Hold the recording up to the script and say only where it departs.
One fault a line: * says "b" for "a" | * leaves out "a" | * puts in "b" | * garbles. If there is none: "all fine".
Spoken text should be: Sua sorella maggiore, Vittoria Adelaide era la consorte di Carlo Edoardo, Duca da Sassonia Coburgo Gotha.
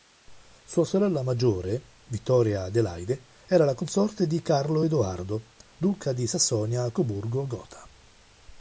* says "di" for "da"